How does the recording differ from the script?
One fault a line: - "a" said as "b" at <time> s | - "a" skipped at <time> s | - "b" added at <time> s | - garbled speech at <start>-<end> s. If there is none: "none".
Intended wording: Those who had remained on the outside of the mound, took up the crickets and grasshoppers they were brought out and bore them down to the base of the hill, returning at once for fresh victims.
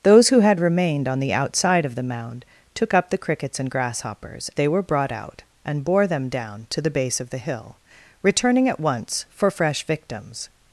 none